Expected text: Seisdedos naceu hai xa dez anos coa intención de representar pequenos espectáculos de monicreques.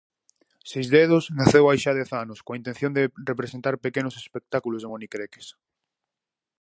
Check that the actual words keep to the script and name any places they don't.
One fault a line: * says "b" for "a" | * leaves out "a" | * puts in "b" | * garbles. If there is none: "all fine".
all fine